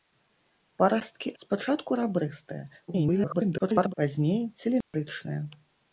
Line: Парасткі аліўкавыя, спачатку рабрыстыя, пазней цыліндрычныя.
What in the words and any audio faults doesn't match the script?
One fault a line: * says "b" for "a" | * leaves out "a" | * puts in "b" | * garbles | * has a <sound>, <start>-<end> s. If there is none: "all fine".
* leaves out "аліўкавыя"
* garbles
* has a dropout, 4.8-4.9 s